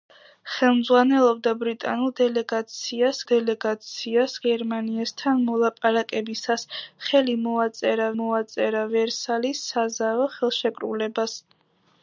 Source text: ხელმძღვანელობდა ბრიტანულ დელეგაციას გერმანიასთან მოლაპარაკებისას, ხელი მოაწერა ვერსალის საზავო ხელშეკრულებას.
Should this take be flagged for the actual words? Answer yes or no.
yes